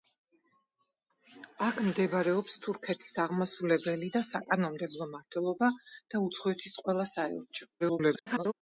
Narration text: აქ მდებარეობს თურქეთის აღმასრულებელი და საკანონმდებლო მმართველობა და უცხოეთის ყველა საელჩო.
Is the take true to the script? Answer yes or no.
no